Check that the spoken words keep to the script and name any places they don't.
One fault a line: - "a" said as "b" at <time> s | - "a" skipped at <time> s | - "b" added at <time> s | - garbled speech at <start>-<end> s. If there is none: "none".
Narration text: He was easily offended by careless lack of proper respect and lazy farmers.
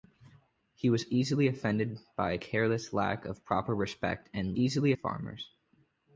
- "lazy" said as "easily" at 4.6 s